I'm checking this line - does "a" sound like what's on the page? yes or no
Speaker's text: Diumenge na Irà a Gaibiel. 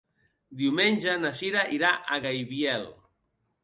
yes